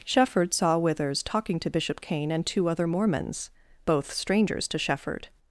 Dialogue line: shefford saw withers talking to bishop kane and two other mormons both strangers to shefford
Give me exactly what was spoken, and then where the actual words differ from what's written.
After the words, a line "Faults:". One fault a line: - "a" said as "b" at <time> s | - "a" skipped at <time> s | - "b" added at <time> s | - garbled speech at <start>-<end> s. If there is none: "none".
shefford saw withers talking to bishop kane and two other mormons both strangers to shefford
Faults:
none